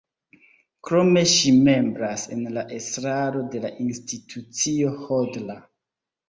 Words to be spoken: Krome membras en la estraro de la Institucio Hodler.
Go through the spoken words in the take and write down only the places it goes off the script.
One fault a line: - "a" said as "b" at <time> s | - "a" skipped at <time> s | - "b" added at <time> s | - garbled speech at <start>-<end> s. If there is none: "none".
- "ŝi" added at 1.3 s